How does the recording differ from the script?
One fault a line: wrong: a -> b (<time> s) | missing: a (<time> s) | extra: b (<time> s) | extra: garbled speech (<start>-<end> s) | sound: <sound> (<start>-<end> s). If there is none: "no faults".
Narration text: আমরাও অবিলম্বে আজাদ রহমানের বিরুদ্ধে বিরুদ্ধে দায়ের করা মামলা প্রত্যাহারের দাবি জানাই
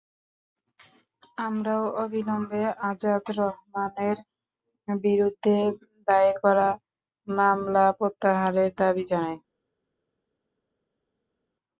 missing: বিরুদ্ধে (5.5 s)